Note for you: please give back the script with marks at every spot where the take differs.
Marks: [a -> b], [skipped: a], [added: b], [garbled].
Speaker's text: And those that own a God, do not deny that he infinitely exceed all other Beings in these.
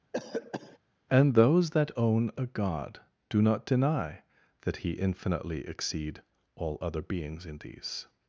And those that own a God, do not deny that he infinitely exceed all other Beings in these.